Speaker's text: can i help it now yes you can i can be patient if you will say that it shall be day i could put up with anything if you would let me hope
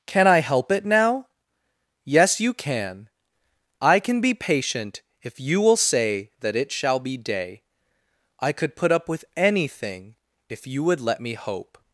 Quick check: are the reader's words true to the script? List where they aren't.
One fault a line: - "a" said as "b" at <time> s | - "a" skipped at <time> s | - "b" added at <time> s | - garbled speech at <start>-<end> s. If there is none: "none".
none